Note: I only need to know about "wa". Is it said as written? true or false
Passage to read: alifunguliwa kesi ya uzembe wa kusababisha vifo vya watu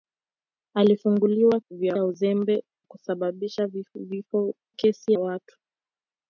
false